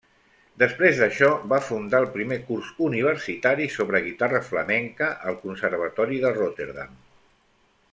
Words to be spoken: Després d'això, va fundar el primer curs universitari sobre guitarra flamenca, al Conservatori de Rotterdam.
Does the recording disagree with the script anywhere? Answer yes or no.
no